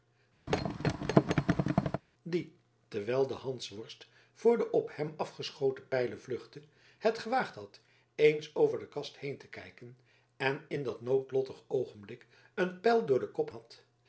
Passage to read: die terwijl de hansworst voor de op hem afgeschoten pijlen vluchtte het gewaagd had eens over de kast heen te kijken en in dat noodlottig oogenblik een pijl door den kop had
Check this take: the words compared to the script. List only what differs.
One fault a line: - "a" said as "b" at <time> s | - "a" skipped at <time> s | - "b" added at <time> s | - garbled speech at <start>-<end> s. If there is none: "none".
none